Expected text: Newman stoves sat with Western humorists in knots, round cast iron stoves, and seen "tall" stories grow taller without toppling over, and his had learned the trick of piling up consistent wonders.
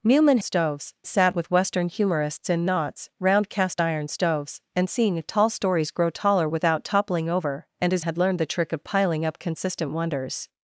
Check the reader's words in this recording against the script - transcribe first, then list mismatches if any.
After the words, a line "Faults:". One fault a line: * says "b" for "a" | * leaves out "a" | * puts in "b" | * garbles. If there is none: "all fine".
Newman stoves sat with Western humorists in knots, round cast iron stoves, and seen "tall" stories grow taller without toppling over, and his had learned the trick of piling up consistent wonders.
Faults:
all fine